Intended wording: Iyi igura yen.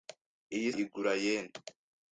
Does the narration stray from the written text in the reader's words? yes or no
no